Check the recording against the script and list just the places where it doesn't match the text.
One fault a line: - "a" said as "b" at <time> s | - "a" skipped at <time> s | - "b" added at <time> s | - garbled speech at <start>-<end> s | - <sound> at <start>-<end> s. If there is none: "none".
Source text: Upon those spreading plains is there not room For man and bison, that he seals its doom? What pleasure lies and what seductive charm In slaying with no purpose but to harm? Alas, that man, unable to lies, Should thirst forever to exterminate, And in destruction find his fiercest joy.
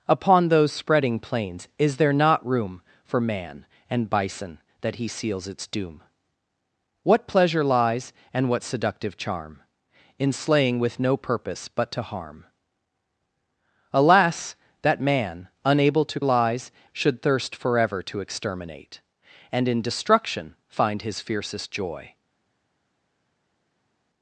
none